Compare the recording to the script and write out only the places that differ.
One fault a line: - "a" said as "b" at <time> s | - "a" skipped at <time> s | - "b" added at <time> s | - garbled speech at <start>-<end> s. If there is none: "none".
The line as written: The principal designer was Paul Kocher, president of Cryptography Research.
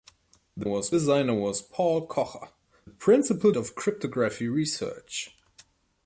- "principal" said as "was" at 0.6 s
- "president" said as "principal" at 2.9 s